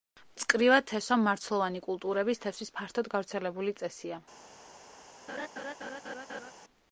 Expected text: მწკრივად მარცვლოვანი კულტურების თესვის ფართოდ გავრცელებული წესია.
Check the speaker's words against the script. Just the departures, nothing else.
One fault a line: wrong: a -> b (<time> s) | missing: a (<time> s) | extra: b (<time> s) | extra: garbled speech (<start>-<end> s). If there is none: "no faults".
extra: თესვა (0.9 s)